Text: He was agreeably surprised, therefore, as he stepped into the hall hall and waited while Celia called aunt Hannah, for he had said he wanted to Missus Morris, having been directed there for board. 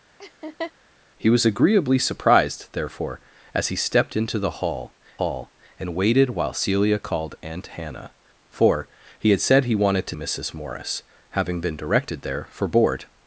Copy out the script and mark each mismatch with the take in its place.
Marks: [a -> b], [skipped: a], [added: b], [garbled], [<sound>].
[laugh] He was agreeably surprised, therefore, as he stepped into the hall hall and waited while Celia called aunt Hannah, for he had said he wanted to Missus Morris, having been directed there for board.